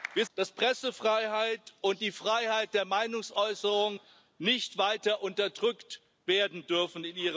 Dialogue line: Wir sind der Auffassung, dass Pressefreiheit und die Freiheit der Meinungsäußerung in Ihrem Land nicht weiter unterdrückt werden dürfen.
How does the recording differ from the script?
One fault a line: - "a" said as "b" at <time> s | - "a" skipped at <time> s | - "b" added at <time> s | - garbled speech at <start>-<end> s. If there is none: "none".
- "sind der Auffassung" skipped at 0.2 s